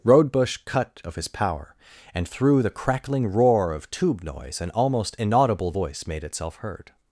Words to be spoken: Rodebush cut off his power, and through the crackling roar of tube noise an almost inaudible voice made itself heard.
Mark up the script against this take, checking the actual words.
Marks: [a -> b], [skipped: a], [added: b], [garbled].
Rodebush cut [off -> of] his power, and through the crackling roar of tube noise an almost inaudible voice made itself heard.